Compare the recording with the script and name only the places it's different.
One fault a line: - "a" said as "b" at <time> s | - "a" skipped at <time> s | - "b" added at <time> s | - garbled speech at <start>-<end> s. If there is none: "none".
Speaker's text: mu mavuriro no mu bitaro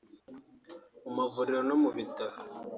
none